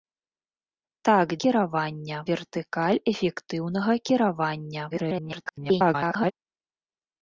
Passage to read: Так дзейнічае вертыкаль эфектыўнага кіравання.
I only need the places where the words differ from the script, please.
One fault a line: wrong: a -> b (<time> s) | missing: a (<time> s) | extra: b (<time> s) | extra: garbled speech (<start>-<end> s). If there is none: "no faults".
wrong: дзейнічае -> кіравання (1.4 s)
extra: garbled speech (4.9-6.3 s)